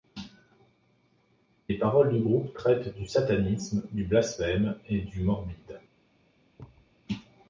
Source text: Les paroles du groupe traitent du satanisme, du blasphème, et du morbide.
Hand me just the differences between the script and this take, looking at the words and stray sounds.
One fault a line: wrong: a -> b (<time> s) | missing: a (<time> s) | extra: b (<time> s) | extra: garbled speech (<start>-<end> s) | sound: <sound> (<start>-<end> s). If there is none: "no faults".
sound: thud (6.6-7.0 s)